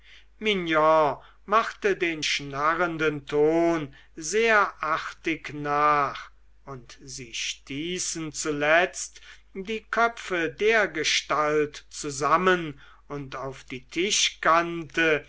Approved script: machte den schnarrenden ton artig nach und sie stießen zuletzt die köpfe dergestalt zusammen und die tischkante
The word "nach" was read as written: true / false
true